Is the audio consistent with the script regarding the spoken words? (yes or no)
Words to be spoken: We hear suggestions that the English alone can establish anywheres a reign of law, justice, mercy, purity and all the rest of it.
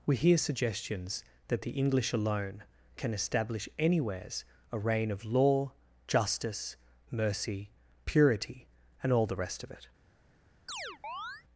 yes